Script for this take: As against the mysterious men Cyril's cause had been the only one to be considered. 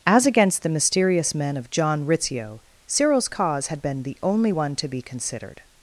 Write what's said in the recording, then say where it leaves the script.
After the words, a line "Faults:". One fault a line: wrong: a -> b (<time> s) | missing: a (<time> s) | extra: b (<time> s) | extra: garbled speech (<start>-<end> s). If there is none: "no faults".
As against the mysterious men of John Rizzio Cyril's cause had been the only one to be considered.
Faults:
extra: of John Rizzio (1.6 s)